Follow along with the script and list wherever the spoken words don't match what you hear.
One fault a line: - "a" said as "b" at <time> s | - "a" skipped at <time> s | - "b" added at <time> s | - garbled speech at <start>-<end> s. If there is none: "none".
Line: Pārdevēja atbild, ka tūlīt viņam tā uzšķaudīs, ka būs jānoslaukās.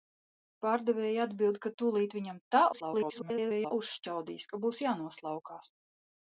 - garbled speech at 2.7-3.7 s